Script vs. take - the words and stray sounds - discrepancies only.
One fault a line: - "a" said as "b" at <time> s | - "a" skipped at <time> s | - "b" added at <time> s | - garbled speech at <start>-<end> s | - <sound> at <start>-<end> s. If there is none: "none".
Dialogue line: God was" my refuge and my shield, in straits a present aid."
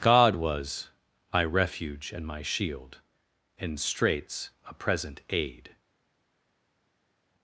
none